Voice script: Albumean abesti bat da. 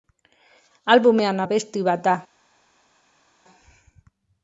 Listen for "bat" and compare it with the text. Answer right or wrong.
right